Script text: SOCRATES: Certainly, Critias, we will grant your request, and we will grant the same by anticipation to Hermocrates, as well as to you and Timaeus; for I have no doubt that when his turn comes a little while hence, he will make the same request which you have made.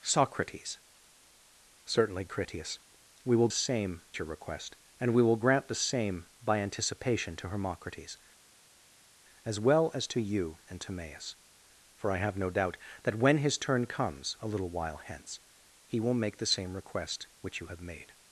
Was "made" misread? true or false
false